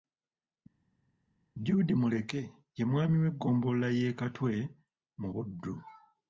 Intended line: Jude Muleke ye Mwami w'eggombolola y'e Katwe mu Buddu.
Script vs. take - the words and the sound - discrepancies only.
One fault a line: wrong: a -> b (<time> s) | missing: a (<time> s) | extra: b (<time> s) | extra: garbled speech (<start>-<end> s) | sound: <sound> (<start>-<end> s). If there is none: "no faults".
no faults